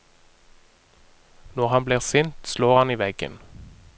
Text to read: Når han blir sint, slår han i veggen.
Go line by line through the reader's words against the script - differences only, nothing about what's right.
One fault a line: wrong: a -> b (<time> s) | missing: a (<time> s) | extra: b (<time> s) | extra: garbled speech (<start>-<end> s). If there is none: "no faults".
no faults